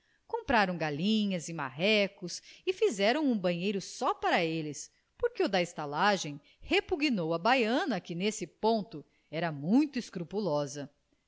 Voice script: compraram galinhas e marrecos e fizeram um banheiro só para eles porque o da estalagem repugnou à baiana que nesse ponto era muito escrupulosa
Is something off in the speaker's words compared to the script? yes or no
no